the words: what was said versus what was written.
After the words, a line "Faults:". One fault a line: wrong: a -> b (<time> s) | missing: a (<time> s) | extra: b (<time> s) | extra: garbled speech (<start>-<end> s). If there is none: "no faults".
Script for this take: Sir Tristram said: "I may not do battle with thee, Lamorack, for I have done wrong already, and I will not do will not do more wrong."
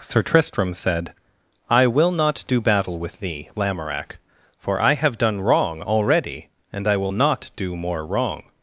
Sir Tristram said: "I will not do battle with thee, Lamorack, for I have done wrong already, and I will not do more wrong."
Faults:
wrong: may -> will (1.9 s)
missing: will not do (7.7 s)